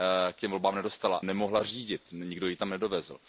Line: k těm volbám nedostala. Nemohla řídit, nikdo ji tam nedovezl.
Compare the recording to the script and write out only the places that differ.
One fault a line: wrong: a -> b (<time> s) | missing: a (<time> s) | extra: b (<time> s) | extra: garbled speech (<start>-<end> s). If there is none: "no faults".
no faults